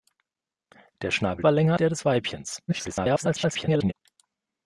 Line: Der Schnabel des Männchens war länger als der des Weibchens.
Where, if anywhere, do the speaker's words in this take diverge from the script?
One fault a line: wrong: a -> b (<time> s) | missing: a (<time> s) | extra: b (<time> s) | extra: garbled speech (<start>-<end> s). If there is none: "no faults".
missing: des Männchens (1.4 s)
missing: als (1.8 s)
extra: garbled speech (2.7-3.9 s)